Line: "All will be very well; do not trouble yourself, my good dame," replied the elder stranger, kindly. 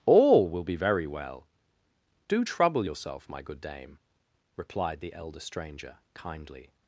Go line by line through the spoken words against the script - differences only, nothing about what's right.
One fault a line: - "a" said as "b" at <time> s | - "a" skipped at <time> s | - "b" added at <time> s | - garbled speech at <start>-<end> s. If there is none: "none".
- "not" skipped at 2.4 s